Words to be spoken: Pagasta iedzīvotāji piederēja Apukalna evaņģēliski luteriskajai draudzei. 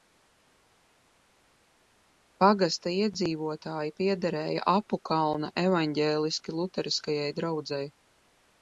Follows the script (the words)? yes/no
yes